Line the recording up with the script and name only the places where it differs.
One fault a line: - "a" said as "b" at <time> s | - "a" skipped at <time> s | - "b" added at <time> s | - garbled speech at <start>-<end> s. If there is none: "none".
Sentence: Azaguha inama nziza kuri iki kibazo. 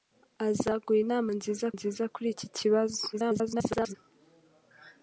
- "nziza" added at 1.8 s
- garbled speech at 3.1-4.0 s